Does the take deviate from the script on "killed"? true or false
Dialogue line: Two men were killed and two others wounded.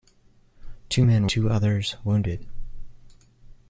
true